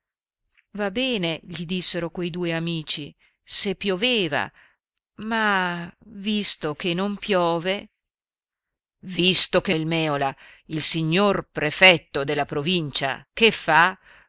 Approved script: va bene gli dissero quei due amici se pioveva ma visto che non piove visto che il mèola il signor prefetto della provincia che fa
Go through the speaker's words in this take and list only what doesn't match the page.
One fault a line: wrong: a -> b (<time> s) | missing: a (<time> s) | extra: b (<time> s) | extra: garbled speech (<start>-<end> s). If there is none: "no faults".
no faults